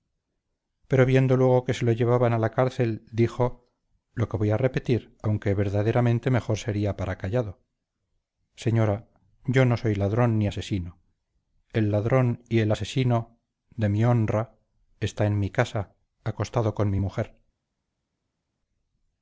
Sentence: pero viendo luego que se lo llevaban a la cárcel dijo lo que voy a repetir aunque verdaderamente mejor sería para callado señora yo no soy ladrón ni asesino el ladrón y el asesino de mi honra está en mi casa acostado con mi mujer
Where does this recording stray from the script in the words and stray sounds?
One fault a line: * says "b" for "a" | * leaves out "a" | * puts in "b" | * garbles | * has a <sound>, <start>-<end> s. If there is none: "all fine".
all fine